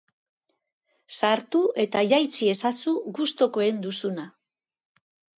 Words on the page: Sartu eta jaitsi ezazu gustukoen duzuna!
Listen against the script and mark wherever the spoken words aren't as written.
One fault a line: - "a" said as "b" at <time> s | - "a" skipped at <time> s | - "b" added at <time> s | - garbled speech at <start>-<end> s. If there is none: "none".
none